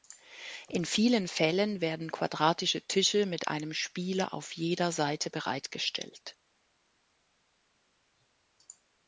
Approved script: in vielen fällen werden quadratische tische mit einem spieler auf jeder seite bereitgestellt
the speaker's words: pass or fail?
pass